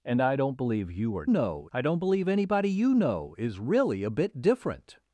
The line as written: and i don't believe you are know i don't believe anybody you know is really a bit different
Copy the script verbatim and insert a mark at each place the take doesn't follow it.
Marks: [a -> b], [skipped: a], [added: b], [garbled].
and i don't believe you are know i don't believe anybody you know is really a bit different